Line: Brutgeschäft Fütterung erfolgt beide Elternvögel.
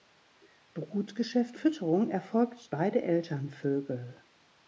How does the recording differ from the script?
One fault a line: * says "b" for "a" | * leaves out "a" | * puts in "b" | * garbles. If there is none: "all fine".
all fine